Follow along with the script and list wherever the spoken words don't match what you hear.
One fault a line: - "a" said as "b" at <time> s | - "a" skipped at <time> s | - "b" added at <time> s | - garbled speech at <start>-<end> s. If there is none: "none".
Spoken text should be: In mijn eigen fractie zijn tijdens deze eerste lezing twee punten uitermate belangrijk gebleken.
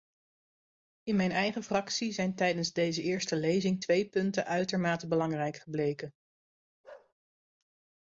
none